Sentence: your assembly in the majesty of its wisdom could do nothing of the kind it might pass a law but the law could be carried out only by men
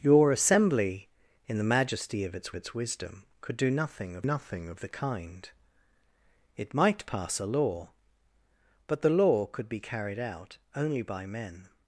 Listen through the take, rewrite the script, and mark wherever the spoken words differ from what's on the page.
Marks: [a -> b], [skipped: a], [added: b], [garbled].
your assembly in the majesty of its [added: its] wisdom could do nothing of [added: nothing of] the kind it might pass a law but the law could be carried out only by men